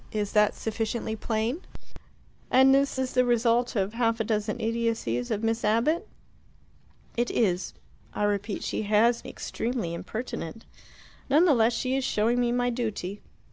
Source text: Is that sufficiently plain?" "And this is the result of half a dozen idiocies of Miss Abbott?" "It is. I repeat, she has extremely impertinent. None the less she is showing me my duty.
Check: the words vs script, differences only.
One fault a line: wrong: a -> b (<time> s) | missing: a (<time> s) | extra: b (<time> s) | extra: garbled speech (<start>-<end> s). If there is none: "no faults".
no faults